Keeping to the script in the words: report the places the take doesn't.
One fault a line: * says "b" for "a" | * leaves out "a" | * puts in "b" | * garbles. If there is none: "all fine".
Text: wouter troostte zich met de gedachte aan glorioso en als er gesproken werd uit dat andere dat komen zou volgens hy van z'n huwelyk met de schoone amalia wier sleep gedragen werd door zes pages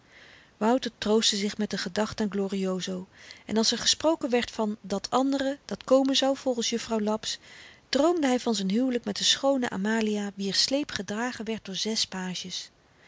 * says "van" for "uit"
* puts in "juffrouw laps droomde"